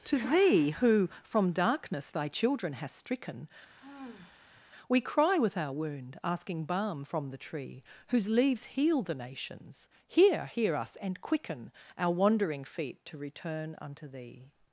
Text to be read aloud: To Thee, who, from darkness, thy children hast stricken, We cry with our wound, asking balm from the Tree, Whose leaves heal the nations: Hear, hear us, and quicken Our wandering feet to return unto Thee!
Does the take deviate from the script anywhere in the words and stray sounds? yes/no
yes